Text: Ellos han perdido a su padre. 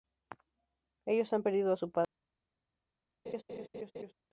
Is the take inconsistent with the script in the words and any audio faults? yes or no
yes